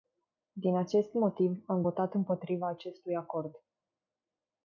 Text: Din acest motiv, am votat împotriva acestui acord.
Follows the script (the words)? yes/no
yes